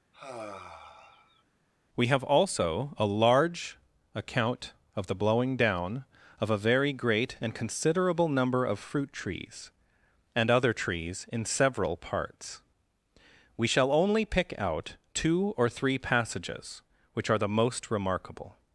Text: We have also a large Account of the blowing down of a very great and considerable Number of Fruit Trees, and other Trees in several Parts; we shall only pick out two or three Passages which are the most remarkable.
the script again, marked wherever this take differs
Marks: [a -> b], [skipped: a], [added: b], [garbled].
We have also a large Account of the blowing down of a very great and considerable Number of Fruit Trees, and other Trees in several Parts; we shall only pick out two or three Passages which are the most remarkable.